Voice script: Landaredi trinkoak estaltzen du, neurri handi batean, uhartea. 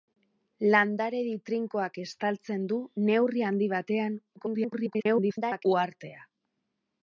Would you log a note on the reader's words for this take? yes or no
yes